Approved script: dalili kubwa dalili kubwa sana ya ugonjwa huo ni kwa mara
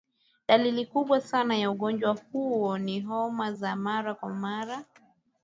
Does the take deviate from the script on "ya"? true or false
false